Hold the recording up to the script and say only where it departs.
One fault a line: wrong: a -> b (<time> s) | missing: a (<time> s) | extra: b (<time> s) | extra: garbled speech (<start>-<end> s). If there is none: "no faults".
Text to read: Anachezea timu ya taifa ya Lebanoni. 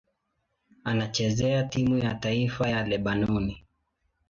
no faults